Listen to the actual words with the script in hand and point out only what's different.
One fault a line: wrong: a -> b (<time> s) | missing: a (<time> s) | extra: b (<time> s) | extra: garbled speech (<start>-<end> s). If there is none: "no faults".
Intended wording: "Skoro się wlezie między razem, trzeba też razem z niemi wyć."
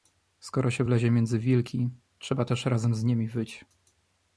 wrong: razem -> wilki (1.4 s)